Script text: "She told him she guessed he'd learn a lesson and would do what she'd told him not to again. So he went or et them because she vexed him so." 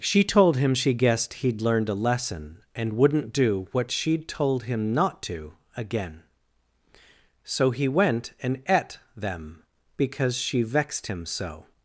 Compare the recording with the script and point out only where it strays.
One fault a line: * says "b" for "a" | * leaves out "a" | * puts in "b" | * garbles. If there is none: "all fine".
* says "learned" for "learn"
* says "wouldn't" for "would"
* says "and" for "or"